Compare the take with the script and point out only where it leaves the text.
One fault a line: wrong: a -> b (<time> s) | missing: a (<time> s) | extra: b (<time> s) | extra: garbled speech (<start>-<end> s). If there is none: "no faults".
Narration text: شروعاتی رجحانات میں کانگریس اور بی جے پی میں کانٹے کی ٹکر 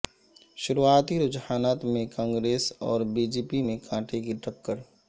no faults